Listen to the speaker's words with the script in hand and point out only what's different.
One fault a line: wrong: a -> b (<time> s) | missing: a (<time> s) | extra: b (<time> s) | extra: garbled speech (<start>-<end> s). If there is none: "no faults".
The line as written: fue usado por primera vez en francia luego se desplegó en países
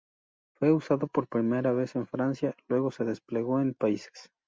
no faults